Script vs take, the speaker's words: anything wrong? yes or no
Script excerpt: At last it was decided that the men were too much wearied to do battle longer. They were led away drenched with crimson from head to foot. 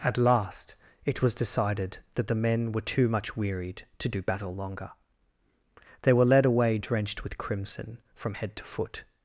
no